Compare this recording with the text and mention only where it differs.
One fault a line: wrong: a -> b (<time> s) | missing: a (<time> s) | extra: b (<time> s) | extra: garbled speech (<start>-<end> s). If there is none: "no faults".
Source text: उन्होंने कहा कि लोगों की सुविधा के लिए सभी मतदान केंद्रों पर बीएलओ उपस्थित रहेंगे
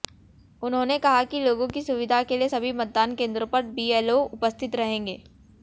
no faults